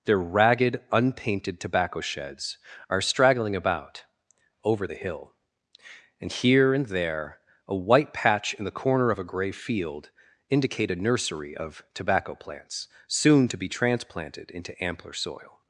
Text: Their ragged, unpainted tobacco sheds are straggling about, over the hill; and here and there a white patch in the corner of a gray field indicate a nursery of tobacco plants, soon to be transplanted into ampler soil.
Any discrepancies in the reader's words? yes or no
no